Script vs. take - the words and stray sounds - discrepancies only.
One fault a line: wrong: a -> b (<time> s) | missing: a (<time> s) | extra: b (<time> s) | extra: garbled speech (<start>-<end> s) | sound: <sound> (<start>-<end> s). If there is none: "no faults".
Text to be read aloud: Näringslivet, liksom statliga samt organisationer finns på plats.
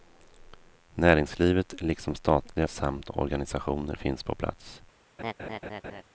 sound: laugh (5.2-6.0 s)